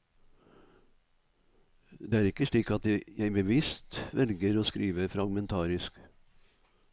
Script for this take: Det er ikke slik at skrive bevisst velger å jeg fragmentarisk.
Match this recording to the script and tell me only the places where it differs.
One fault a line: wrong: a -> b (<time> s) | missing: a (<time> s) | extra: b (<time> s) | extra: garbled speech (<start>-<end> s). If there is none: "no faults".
wrong: skrive -> jeg (2.9 s)
wrong: jeg -> skrive (4.7 s)